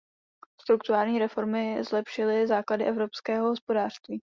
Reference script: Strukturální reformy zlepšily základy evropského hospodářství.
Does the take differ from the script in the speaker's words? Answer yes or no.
no